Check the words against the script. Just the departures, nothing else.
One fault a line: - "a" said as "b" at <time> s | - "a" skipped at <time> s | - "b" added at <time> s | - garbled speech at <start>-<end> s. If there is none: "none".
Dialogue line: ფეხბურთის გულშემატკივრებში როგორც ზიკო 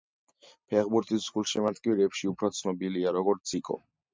- "უფრო ცნობილია" added at 2.3 s